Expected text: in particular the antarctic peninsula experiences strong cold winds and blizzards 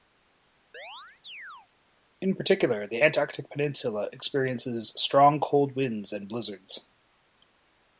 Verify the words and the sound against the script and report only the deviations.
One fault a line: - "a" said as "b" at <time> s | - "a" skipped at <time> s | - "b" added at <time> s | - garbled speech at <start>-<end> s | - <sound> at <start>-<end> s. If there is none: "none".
- chirp at 0.7-1.7 s